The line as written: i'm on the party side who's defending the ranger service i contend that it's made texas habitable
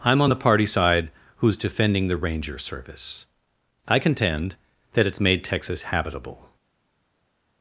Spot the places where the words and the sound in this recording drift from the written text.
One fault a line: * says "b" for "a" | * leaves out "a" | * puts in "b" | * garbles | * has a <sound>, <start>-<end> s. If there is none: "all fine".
all fine